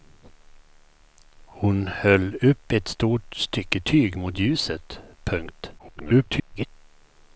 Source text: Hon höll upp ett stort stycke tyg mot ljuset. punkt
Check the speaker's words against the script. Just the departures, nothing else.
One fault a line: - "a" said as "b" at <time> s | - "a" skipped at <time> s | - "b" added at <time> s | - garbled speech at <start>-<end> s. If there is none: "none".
- garbled speech at 5.8-6.7 s